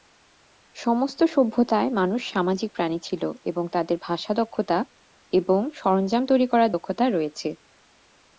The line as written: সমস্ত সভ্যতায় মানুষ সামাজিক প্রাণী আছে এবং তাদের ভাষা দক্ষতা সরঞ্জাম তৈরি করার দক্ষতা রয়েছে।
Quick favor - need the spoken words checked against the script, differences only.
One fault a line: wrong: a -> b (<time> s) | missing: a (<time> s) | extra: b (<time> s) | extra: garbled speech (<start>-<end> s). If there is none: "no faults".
wrong: আছে -> ছিল (3.0 s)
extra: এবং (5.3 s)